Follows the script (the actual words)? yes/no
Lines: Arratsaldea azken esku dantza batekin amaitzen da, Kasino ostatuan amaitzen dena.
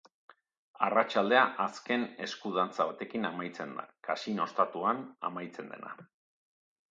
yes